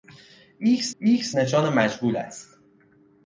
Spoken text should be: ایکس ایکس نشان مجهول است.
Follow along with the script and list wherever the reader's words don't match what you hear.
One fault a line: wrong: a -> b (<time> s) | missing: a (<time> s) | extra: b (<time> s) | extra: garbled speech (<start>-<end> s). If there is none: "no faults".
no faults